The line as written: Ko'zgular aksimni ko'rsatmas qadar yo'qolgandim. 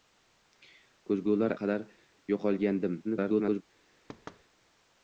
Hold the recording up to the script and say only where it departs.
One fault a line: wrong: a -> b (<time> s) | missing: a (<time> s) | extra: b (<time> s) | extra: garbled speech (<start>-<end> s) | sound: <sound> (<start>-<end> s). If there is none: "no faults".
missing: aksimni ko'rsatmas (1.5 s)
extra: garbled speech (3.0-3.6 s)
sound: thud (4.1-4.4 s)